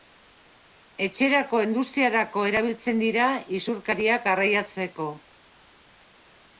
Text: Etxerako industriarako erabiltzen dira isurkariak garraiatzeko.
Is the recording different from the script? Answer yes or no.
no